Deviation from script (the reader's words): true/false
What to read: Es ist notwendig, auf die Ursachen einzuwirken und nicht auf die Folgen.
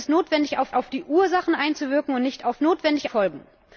true